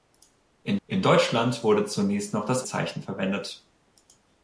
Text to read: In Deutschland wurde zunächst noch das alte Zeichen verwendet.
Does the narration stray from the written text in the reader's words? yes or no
yes